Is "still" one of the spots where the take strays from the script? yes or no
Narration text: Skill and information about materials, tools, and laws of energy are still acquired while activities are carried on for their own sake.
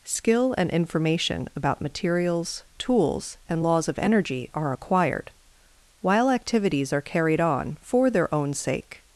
yes